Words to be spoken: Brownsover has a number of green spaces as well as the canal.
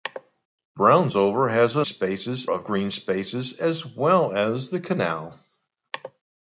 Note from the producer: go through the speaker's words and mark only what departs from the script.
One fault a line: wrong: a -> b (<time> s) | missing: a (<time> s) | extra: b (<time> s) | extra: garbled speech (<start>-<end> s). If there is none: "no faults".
wrong: number -> spaces (1.8 s)